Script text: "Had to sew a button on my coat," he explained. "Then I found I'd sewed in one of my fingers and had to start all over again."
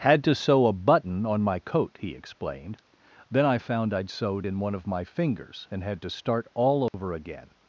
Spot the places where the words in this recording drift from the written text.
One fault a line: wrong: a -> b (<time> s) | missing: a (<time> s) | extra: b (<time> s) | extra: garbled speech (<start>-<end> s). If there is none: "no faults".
no faults